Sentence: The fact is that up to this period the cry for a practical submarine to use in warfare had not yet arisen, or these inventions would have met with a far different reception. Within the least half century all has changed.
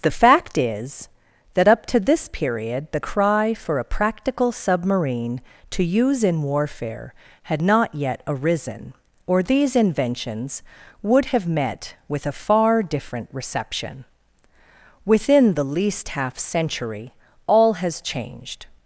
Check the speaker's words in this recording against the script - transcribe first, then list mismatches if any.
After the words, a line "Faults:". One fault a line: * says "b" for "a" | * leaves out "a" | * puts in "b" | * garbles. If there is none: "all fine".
The fact is that up to this period the cry for a practical submarine to use in warfare had not yet arisen, or these inventions would have met with a far different reception. Within the least half century all has changed.
Faults:
all fine